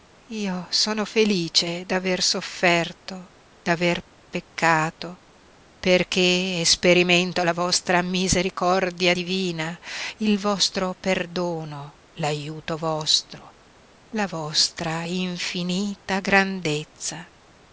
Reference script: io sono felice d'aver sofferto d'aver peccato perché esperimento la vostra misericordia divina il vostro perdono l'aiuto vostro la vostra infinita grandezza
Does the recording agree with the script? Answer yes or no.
yes